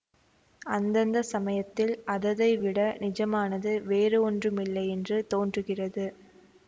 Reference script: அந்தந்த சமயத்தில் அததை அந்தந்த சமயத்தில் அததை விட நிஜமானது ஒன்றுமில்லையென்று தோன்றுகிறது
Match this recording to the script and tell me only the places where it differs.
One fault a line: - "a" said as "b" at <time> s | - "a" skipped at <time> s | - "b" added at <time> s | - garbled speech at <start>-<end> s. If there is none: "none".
- "அந்தந்த சமயத்தில் அததை" skipped at 2.5 s
- "வேறு" added at 3.9 s